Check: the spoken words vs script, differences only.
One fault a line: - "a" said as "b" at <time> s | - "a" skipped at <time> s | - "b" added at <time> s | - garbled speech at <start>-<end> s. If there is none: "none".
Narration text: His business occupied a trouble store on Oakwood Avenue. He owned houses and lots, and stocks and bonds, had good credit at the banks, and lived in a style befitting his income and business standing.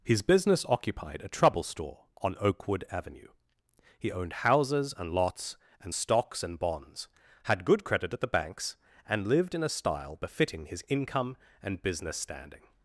none